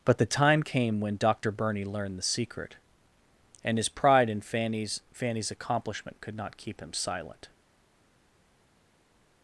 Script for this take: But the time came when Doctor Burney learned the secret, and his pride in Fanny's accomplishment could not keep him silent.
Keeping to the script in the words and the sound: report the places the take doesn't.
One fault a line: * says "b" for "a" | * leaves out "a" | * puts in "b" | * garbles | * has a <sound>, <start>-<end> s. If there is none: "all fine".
* puts in "Fanny's"